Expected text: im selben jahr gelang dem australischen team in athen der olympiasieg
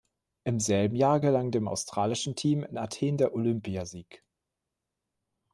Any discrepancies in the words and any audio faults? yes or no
no